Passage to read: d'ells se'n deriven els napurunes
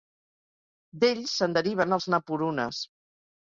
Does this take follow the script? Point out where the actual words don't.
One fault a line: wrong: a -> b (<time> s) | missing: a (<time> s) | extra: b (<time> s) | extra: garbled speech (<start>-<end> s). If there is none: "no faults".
no faults